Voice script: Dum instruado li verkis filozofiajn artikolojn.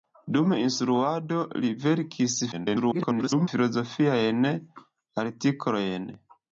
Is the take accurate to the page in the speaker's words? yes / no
no